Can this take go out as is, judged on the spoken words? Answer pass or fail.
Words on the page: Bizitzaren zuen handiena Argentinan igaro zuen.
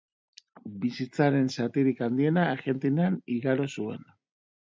fail